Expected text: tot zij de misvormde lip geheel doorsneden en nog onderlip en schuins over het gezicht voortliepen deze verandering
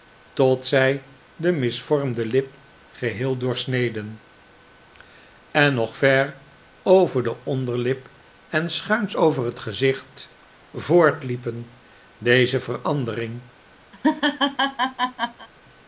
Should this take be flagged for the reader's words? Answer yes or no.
yes